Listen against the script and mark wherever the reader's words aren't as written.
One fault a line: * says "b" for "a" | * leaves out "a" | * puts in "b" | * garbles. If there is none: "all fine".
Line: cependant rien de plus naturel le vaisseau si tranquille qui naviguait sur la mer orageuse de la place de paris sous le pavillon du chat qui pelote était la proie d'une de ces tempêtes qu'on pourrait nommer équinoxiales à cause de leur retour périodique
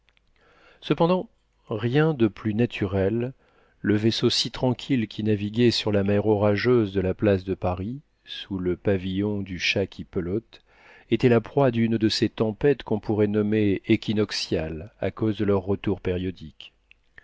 all fine